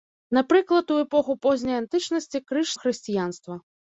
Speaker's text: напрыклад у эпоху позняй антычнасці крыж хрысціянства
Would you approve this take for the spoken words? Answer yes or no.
yes